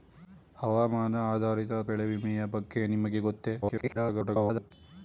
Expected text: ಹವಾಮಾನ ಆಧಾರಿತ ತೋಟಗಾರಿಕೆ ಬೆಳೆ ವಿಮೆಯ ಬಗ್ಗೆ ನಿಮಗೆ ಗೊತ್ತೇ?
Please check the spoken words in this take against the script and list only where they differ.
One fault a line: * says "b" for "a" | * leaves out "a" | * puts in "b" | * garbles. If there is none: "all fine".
* leaves out "ತೋಟಗಾರಿಕೆ"
* garbles